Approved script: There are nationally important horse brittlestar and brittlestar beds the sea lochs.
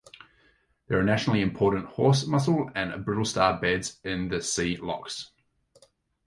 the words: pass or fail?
fail